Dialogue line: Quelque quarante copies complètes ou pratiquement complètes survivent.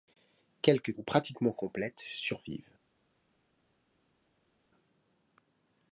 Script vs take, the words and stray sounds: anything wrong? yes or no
yes